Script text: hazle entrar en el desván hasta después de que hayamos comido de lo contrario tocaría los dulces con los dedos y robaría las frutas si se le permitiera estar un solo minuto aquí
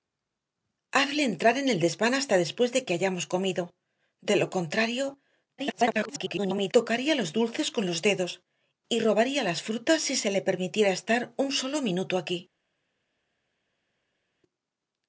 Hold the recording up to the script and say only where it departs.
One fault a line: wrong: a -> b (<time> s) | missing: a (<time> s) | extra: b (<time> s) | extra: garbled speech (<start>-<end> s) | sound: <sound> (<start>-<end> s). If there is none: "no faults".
extra: garbled speech (5.6-6.7 s)